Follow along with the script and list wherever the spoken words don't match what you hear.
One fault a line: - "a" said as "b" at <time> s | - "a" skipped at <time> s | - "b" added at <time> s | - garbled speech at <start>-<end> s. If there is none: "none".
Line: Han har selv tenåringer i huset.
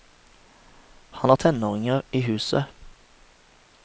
- "selv" skipped at 1.4 s